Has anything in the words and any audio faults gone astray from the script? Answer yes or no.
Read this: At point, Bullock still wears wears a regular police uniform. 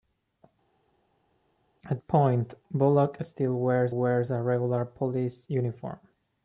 no